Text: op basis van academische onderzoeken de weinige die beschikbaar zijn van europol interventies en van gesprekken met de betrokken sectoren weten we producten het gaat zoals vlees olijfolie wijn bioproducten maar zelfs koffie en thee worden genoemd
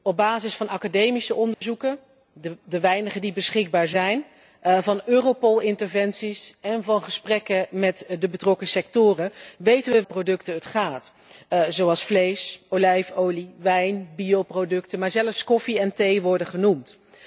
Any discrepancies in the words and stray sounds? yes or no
yes